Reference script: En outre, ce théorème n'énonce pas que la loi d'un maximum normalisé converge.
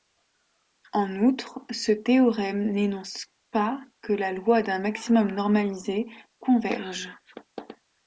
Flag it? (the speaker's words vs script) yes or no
no